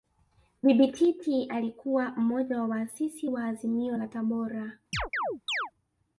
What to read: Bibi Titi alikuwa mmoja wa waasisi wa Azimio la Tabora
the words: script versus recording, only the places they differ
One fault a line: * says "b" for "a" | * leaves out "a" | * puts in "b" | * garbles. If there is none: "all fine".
all fine